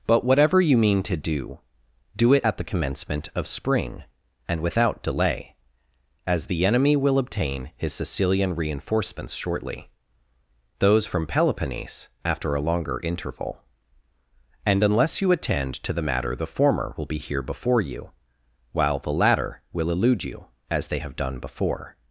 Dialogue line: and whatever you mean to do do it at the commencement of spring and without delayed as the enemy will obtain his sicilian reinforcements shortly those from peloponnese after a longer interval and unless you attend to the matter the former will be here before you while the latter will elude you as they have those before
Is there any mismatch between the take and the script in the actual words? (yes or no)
yes